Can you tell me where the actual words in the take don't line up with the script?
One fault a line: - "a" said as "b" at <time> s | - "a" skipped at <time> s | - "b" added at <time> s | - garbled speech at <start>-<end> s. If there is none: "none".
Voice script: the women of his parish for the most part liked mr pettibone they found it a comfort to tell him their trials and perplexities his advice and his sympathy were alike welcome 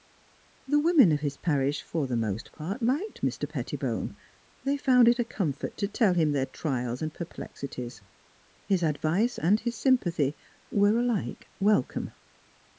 none